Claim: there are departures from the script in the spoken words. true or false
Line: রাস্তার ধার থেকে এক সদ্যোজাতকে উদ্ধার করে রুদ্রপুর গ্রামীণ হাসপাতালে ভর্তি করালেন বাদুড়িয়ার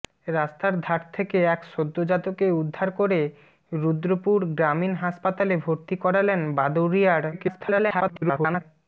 true